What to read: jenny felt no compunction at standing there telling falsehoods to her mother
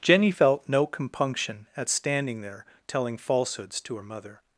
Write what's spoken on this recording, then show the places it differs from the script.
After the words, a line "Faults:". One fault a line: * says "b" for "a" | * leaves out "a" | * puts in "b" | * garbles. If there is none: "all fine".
jenny felt no compunction at standing there telling falsehoods to her mother
Faults:
all fine